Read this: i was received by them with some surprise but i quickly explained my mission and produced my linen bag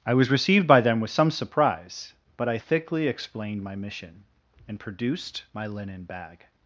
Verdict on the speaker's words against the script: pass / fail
fail